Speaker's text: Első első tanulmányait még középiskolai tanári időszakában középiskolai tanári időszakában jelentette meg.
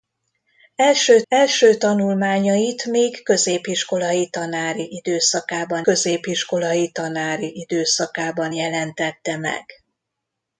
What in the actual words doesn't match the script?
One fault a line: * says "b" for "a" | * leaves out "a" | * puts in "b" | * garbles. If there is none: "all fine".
all fine